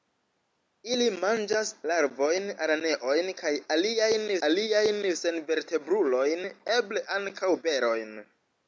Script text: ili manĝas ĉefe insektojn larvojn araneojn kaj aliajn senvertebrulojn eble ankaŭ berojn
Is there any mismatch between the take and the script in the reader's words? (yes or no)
yes